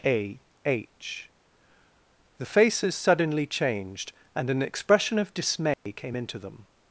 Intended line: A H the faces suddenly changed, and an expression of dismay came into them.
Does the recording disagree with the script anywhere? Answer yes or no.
no